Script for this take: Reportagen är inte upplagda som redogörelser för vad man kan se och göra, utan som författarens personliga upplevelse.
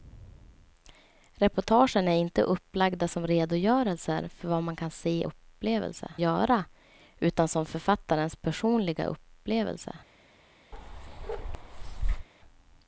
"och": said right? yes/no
no